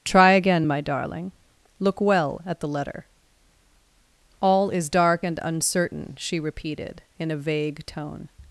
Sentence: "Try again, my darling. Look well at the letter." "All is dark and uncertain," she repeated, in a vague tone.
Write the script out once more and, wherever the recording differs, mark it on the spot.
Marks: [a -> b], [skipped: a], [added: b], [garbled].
"Try again, my darling. Look well at the letter." "All is dark and uncertain," she repeated, in a vague tone.